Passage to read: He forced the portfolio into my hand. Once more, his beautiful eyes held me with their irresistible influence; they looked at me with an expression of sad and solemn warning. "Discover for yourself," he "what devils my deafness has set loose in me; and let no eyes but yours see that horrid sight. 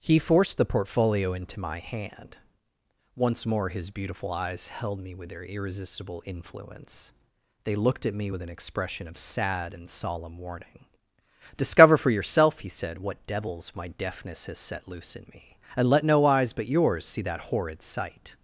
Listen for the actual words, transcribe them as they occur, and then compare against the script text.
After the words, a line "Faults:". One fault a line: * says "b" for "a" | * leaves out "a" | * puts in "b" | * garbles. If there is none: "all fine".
He forced the portfolio into my hand. Once more, his beautiful eyes held me with their irresistible influence; they looked at me with an expression of sad and solemn warning. "Discover for yourself," he said, "what devils my deafness has set loose in me; and let no eyes but yours see that horrid sight.
Faults:
* puts in "said"